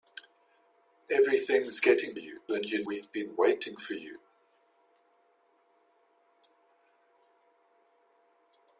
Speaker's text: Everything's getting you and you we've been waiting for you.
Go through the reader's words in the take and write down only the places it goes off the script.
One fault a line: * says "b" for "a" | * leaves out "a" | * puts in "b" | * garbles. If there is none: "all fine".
all fine